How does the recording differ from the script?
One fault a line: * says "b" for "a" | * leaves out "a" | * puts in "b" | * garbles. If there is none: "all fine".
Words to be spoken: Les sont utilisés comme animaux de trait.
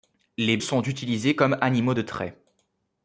all fine